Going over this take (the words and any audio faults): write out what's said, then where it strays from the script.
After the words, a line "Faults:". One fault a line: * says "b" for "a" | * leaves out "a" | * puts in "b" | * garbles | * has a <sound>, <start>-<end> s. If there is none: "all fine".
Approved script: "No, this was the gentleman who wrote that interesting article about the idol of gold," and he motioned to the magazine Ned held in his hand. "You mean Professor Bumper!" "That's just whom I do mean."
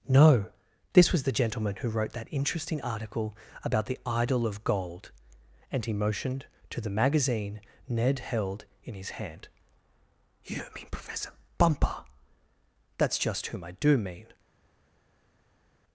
"No, this was the gentleman who wrote that interesting article about the idol of gold," and he motioned to the magazine Ned held in his hand. "You mean Professor Bumper!" "That's just whom I do mean."
Faults:
all fine